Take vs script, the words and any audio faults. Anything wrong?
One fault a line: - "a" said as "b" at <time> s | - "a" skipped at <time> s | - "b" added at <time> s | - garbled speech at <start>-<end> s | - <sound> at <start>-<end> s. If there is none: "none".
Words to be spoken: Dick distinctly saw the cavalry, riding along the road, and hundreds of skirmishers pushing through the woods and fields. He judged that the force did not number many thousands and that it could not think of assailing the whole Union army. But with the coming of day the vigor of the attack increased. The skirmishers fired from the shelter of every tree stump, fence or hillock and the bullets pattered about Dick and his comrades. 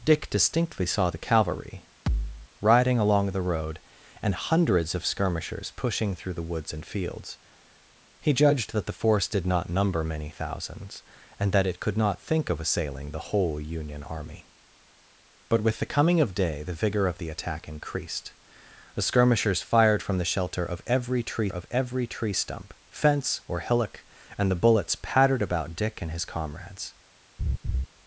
- thud at 2.1-2.5 s
- "of every tree" added at 21.5 s
- laugh at 27.4-27.9 s